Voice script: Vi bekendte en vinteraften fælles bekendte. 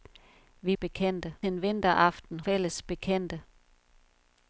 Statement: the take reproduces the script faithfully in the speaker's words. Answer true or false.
true